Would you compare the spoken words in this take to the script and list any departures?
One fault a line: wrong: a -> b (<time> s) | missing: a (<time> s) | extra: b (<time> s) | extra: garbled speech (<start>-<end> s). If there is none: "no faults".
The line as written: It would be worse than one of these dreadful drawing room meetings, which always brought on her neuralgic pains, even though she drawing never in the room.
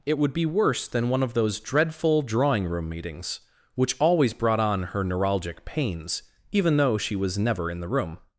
wrong: these -> those (1.3 s)
wrong: drawing -> was (7.2 s)